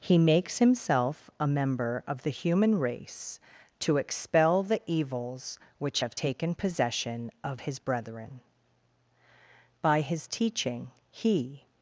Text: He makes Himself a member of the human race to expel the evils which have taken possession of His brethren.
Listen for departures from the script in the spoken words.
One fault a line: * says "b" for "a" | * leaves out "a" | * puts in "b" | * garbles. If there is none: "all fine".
* puts in "By His teaching He"